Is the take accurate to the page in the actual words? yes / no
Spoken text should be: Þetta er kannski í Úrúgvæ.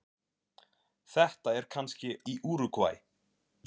yes